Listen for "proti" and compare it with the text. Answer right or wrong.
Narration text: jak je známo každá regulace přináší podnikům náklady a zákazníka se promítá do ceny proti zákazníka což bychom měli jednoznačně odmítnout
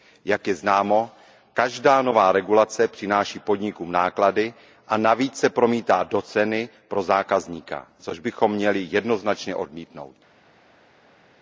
wrong